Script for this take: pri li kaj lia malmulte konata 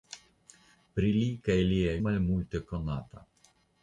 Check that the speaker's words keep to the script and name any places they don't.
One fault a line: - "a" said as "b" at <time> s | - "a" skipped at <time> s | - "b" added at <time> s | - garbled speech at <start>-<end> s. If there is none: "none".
none